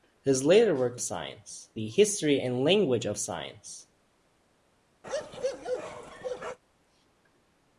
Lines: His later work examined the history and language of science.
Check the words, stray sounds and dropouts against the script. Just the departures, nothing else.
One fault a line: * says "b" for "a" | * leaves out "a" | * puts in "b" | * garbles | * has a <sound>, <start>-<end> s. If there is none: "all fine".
* says "science" for "examined"
* has a bark, 5.0-6.6 s